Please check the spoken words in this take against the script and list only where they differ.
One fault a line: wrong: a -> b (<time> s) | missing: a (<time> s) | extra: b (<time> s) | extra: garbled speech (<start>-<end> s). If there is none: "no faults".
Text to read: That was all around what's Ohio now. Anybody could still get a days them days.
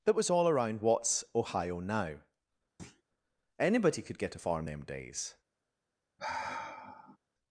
missing: still (4.2 s)
wrong: days -> farm (4.4 s)